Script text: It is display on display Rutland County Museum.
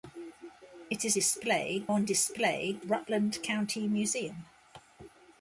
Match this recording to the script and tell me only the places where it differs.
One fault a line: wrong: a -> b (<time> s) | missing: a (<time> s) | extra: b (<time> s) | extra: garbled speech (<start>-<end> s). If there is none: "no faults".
no faults